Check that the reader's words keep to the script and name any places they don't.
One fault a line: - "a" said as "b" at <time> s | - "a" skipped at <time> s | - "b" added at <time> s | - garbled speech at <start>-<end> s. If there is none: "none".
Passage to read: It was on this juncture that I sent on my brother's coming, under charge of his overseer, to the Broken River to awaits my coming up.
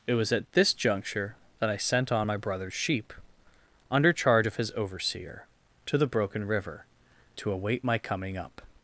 - "on" said as "at" at 0.3 s
- "coming" said as "sheep" at 2.7 s
- "awaits" said as "await" at 7.5 s